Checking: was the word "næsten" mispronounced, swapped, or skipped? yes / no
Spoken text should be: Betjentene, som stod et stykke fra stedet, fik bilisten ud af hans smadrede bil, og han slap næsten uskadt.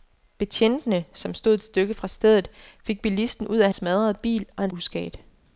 yes